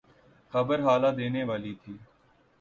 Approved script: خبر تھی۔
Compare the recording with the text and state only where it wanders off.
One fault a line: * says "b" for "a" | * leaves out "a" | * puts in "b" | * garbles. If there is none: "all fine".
* puts in "ہلا دینے والی"